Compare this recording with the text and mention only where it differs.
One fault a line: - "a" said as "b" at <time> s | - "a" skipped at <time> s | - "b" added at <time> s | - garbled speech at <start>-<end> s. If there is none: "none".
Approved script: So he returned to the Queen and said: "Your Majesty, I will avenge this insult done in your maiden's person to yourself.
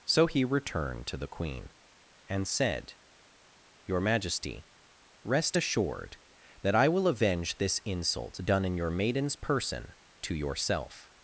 - "rest assured that" added at 5.2 s